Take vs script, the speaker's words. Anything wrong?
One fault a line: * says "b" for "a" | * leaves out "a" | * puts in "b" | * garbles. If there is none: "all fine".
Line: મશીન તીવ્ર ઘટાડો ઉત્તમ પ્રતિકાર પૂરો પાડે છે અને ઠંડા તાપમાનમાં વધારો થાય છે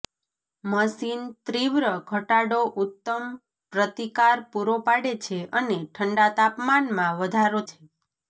* leaves out "થાય"